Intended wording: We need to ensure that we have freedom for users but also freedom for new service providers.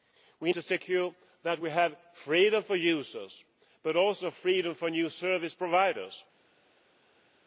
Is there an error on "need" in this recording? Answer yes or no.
yes